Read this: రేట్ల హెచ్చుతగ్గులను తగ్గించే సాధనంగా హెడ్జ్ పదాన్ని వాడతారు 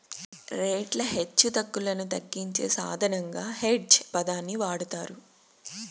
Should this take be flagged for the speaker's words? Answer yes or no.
no